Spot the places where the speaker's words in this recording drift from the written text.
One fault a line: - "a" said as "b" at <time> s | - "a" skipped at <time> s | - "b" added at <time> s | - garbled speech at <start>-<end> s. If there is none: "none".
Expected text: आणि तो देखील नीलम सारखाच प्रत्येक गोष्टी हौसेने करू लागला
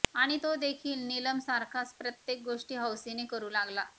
none